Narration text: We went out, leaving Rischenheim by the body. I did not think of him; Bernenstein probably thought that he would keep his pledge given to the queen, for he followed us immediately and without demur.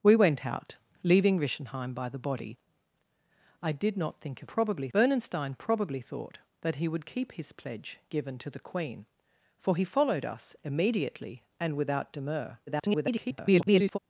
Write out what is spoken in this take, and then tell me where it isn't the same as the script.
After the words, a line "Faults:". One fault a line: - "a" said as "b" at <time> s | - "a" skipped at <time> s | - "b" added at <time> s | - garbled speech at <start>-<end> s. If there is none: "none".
We went out, leaving Rischenheim by the body. I did not think of probably; Bernenstein probably thought that he would keep his pledge given to the queen, for he followed us immediately and without demur. [garbled]
Faults:
- "him" said as "probably" at 4.4 s
- garbled speech at 12.7-14.0 s